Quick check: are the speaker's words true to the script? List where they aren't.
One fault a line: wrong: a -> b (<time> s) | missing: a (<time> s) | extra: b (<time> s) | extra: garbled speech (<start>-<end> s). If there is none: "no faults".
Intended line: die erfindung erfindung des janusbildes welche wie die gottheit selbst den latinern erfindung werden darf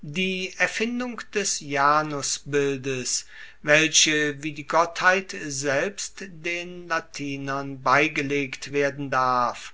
missing: erfindung (1.2 s)
wrong: erfindung -> beigelegt (7.8 s)